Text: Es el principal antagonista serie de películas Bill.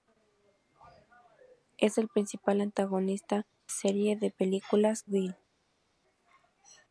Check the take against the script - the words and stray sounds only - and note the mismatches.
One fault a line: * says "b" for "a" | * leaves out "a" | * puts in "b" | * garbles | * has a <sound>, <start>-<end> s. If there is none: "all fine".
all fine